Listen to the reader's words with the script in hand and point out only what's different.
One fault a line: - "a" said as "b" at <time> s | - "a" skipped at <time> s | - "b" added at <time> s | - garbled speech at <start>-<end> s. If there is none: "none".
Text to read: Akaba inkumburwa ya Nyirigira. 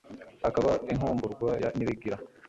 none